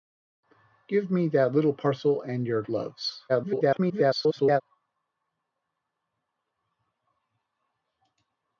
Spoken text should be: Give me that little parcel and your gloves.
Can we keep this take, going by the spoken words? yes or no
no